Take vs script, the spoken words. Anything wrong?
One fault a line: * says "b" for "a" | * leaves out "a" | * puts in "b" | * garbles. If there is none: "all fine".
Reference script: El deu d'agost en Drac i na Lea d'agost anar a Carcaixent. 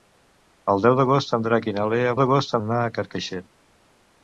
all fine